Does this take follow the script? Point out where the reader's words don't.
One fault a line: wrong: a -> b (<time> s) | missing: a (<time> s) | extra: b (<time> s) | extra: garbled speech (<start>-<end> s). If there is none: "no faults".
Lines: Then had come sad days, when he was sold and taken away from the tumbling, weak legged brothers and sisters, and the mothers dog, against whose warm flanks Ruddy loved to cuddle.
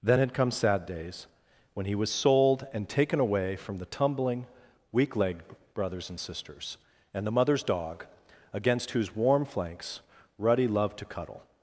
no faults